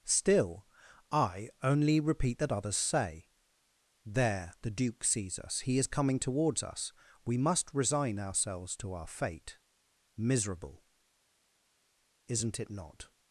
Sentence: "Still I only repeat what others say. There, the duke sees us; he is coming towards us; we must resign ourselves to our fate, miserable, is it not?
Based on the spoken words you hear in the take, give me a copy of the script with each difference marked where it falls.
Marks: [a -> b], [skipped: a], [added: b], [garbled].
"Still I only repeat [what -> that] others say. There, the duke sees us; he is coming towards us; we must resign ourselves to our fate, miserable, [is -> isn't] it not?